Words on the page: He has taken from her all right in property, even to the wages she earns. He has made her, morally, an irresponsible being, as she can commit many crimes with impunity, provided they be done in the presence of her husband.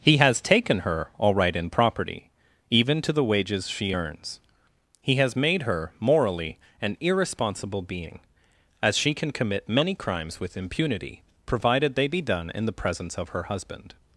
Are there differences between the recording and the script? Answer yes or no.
yes